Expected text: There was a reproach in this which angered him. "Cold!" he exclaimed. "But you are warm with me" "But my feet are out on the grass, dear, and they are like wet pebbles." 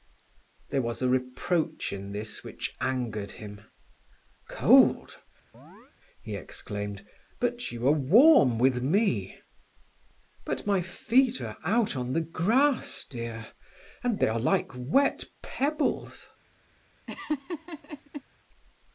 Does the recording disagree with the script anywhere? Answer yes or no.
no